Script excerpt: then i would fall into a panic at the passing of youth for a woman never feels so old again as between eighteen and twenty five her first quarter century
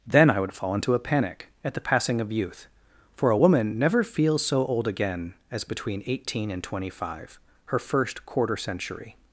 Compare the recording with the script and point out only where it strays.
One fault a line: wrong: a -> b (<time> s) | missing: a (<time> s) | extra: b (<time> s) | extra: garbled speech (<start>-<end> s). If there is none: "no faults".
no faults